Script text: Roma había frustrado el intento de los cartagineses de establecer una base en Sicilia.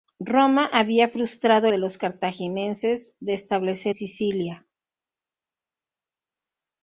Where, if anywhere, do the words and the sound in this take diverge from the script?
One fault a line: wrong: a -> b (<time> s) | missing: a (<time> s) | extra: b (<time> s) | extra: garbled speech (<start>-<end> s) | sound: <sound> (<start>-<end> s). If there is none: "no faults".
missing: el intento (1.7 s)
missing: una base en (3.9 s)